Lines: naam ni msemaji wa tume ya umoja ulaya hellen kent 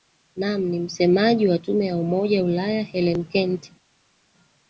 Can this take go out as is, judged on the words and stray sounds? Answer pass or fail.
pass